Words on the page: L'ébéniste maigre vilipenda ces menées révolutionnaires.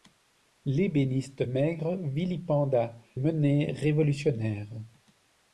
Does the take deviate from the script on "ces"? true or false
true